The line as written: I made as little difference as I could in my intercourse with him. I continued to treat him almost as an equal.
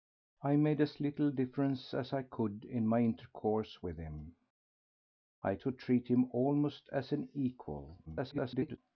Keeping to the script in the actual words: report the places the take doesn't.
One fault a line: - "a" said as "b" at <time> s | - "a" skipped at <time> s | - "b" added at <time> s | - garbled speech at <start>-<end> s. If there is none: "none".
- "continued" skipped at 5.6 s
- garbled speech at 8.1-8.8 s